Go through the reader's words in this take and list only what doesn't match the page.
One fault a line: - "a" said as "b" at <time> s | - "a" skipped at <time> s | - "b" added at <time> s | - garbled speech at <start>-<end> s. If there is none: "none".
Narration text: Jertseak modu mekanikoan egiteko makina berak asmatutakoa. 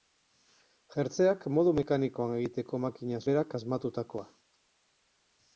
none